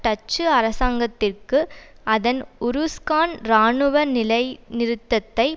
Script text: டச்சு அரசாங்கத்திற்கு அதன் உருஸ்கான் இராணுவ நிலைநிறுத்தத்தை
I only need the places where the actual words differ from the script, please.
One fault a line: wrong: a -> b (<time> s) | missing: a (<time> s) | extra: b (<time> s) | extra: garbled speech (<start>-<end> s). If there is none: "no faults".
no faults